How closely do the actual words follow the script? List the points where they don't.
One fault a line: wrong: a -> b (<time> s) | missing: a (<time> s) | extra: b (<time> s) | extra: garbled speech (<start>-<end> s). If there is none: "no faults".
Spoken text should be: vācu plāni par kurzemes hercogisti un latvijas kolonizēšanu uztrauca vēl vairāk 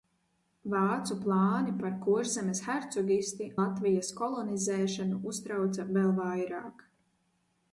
missing: un (3.5 s)